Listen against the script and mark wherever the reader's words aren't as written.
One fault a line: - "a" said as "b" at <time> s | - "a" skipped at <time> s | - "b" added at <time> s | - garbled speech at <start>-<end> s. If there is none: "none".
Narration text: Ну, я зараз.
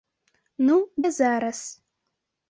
none